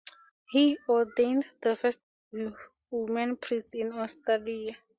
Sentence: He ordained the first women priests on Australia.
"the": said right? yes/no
yes